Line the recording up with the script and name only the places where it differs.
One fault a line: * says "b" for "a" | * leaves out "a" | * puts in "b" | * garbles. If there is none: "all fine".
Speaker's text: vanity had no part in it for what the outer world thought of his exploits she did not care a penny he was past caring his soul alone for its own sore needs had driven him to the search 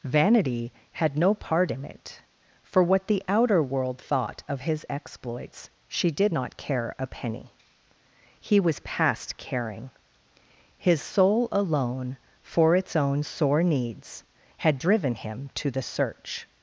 all fine